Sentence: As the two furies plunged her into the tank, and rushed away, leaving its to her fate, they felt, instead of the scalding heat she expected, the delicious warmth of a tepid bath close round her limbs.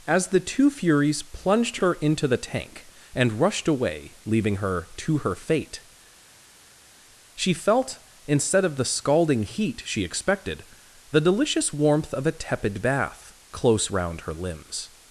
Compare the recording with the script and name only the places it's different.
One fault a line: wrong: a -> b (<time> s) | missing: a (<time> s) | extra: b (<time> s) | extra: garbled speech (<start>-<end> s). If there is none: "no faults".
wrong: its -> her (4.6 s)
wrong: they -> she (7.3 s)